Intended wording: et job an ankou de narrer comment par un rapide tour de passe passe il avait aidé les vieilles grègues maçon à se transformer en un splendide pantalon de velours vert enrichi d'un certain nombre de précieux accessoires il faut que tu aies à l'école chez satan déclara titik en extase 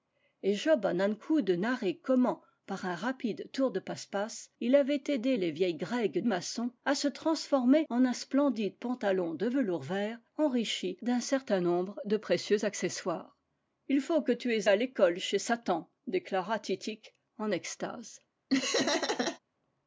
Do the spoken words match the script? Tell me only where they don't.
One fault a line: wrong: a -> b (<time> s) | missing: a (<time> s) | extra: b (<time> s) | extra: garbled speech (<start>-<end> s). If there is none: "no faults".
no faults